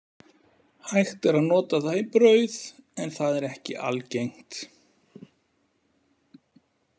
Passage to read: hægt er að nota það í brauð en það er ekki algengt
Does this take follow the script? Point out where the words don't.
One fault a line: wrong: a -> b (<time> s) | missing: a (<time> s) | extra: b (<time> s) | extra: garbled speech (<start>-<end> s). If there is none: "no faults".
no faults